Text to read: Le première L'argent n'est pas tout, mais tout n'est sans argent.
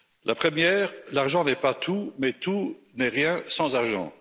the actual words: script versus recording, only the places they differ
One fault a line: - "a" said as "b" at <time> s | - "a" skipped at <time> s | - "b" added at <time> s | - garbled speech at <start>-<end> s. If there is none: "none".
- "Le" said as "La" at 0.2 s
- "rien" added at 3.1 s